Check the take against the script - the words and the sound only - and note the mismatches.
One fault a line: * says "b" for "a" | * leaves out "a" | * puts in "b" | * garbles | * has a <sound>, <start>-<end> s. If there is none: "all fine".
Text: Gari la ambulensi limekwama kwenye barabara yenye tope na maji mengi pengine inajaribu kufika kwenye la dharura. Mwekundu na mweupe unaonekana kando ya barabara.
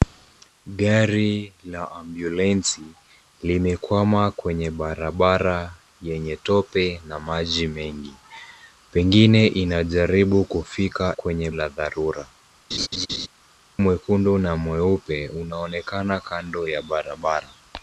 * has a laugh, 12.7-13.3 s